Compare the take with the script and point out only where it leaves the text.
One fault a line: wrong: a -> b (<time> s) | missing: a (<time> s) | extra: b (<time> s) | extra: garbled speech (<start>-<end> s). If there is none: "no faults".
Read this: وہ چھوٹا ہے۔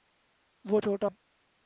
no faults